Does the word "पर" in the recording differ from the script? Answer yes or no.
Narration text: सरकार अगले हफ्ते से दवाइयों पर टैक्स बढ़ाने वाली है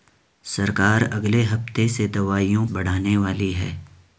yes